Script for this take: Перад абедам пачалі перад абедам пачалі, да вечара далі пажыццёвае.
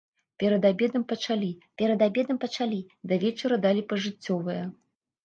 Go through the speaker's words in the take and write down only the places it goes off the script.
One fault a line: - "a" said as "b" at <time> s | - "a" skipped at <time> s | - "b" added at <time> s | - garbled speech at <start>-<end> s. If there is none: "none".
none